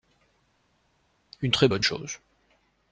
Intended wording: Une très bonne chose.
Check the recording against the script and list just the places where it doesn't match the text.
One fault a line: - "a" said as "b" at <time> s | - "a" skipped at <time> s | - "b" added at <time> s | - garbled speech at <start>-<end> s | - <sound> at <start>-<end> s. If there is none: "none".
none